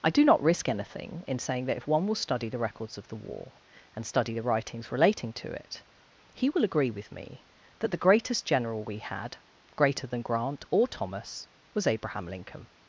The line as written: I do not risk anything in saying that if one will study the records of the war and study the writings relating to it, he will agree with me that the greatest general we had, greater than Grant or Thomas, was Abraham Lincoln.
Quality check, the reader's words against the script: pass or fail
pass